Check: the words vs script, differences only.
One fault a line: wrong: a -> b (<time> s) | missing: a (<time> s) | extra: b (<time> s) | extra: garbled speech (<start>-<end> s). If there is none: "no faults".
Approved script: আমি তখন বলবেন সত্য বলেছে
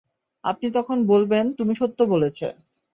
wrong: আমি -> আপনি (0.4 s)
extra: তুমি (1.6 s)